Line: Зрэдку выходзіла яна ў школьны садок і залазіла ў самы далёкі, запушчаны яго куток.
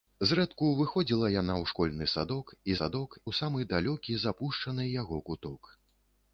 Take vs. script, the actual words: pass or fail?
fail